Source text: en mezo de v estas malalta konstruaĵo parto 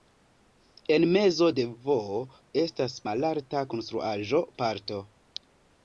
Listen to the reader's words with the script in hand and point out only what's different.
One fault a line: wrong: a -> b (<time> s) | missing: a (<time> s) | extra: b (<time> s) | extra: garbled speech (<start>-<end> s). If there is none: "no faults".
no faults